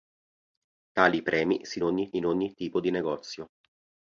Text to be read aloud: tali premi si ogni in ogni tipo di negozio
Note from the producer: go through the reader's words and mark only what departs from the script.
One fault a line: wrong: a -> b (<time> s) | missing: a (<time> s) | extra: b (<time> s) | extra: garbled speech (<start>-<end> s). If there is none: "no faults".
no faults